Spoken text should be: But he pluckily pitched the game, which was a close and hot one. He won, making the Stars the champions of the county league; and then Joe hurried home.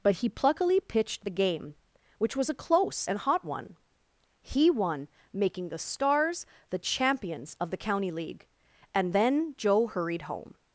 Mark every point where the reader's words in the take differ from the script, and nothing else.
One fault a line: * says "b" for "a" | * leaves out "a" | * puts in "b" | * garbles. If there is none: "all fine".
all fine